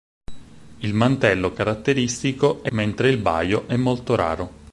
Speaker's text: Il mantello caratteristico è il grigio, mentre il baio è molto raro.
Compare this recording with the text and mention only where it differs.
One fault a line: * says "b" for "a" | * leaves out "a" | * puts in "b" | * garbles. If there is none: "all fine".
* leaves out "il grigio"